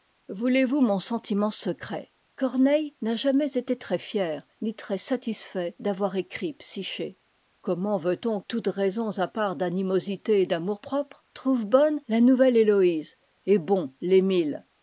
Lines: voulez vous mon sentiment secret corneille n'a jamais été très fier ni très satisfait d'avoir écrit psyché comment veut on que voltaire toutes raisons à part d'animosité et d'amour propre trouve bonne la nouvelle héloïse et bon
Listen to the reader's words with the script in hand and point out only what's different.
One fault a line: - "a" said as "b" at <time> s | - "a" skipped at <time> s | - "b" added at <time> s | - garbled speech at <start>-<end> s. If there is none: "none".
- "que voltaire" skipped at 8.4 s